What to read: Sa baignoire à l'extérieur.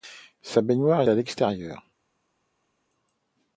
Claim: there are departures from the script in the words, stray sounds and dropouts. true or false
false